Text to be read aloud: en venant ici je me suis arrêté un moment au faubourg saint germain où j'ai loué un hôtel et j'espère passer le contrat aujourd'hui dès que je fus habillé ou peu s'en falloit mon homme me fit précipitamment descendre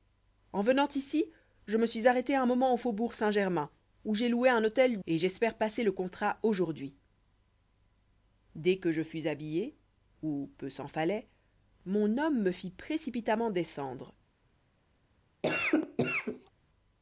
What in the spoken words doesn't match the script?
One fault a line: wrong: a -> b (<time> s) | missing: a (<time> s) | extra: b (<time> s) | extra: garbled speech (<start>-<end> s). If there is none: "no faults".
no faults